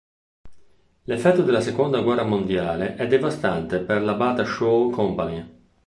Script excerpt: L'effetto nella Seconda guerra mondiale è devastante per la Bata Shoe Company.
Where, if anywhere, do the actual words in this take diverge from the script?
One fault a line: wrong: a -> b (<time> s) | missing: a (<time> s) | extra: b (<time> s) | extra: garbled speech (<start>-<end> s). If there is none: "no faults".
wrong: nella -> della (1.4 s)